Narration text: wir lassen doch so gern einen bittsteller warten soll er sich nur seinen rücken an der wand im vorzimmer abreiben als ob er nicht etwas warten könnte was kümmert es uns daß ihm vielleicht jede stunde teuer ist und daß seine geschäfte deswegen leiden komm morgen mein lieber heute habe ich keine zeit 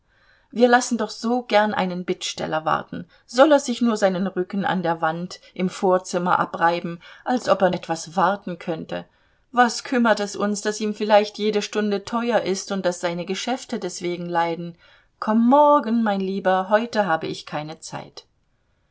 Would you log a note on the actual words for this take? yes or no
yes